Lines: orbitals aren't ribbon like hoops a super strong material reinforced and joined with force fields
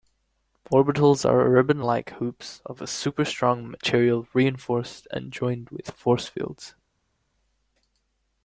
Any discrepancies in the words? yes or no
yes